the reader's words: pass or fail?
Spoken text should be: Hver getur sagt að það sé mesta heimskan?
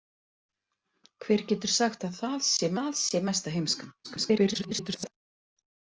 fail